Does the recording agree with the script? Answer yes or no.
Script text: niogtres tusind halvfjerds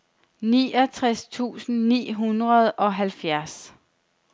no